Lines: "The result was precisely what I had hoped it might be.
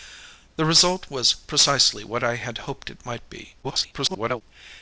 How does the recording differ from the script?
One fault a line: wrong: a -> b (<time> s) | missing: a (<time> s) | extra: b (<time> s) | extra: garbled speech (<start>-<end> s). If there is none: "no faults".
extra: garbled speech (3.6-4.4 s)